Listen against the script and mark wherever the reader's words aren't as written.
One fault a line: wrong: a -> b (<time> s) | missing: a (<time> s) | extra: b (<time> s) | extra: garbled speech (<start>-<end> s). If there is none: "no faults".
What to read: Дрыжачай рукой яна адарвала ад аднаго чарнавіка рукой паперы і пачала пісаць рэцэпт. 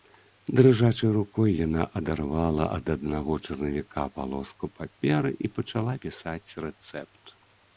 wrong: рукой -> палоску (4.2 s)